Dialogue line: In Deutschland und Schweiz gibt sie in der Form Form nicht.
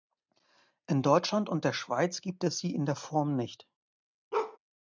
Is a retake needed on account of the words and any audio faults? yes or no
yes